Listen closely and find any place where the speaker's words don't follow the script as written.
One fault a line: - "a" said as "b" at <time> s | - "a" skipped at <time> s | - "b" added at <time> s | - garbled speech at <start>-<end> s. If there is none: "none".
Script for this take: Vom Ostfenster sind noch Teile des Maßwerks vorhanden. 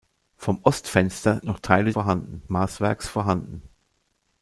- "sind" skipped at 1.4 s
- "des" said as "vorhanden" at 1.9 s